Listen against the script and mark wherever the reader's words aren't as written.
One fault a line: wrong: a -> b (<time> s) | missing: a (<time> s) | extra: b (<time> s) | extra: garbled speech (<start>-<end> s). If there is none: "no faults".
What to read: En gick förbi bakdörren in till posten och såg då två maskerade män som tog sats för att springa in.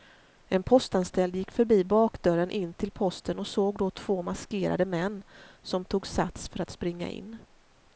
extra: postanställd (0.6 s)